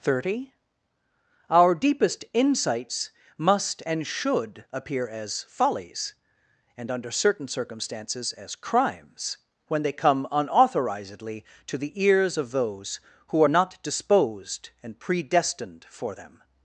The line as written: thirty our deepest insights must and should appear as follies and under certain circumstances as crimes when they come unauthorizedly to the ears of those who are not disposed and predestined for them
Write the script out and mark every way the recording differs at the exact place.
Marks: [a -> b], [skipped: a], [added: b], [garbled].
thirty our deepest insights must and should appear as follies and under certain circumstances as crimes when they come unauthorizedly to the ears of those who are not disposed and predestined for them